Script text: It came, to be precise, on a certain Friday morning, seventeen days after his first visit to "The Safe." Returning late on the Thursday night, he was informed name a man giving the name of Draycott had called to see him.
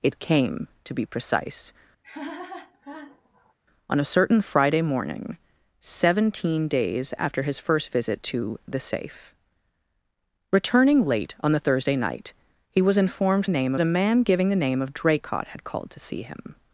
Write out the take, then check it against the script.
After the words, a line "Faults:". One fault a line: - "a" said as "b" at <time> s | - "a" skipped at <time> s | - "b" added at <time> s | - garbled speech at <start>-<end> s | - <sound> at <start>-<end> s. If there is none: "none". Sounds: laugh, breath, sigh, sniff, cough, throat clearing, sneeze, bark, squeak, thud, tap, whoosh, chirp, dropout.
It came, to be precise, on a certain Friday morning, seventeen days after his first visit to "The Safe." Returning late on the Thursday night, he was informed name a man giving the name of Draycott had called to see him.
Faults:
- laugh at 2.0-3.5 s